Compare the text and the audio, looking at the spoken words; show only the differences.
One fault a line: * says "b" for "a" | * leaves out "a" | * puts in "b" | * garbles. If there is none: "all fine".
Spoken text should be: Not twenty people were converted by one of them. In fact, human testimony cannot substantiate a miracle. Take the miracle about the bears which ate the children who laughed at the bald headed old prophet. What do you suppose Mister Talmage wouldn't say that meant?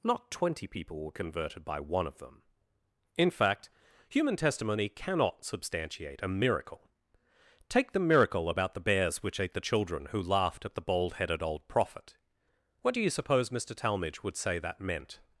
* says "would" for "wouldn't"